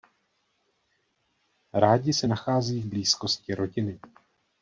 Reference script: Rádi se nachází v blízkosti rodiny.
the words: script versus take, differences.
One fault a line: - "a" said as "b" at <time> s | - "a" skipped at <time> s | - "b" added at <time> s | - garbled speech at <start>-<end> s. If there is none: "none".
none